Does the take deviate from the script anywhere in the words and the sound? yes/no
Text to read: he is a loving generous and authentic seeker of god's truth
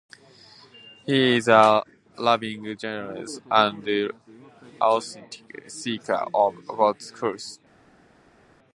no